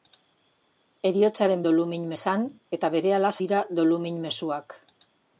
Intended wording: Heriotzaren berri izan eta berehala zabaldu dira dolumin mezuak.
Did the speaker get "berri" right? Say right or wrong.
wrong